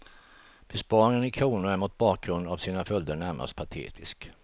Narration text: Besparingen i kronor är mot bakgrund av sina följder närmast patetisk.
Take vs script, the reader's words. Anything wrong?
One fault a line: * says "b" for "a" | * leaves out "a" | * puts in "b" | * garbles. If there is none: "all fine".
all fine